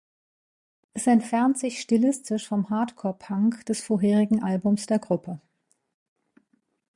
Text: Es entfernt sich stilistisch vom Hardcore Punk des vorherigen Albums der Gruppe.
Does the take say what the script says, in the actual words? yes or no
yes